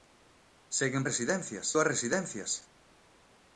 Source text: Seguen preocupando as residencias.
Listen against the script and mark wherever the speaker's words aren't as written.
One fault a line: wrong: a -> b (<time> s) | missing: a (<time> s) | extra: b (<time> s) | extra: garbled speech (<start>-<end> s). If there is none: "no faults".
wrong: preocupando -> residencias (1.1 s)